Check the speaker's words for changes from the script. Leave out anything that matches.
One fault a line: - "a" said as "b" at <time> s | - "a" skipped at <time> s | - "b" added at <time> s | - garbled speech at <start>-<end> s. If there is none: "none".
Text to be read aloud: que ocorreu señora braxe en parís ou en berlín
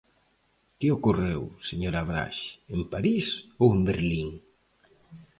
none